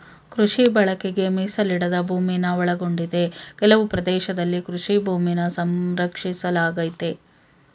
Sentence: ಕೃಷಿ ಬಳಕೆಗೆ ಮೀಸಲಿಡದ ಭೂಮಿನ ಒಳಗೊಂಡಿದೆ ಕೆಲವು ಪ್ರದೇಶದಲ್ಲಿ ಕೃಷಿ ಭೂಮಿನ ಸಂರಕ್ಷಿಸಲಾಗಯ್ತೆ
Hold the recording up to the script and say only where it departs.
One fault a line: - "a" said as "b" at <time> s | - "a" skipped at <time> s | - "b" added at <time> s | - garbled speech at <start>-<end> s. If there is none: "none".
none